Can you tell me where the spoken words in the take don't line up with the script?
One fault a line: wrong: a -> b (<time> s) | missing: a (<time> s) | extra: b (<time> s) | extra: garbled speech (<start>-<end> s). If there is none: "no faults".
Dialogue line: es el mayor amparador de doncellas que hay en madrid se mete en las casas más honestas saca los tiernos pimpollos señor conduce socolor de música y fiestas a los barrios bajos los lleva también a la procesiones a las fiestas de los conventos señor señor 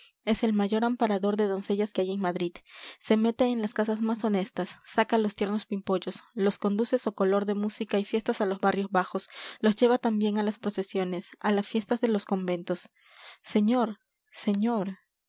wrong: señor -> los (6.3 s)
wrong: la -> las (10.4 s)